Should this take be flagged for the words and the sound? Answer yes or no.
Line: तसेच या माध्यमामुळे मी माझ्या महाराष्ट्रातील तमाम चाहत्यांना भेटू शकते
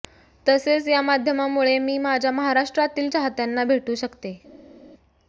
yes